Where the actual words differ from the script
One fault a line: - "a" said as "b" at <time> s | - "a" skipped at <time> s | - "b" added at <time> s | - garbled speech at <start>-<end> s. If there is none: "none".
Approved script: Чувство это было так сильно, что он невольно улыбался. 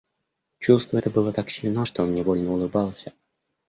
none